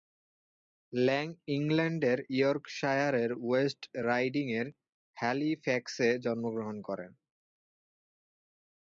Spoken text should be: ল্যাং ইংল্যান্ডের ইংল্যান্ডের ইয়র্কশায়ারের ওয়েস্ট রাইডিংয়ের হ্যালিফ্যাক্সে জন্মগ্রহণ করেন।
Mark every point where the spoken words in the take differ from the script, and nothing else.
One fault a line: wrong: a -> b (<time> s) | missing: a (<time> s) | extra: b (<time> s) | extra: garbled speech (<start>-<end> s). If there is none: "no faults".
missing: ইংল্যান্ডের (2.2 s)